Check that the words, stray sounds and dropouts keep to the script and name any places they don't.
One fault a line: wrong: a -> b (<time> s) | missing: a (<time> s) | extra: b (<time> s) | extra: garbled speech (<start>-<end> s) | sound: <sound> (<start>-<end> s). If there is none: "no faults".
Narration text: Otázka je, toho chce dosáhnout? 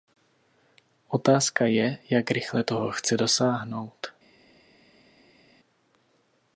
extra: jak rychle (2.1 s)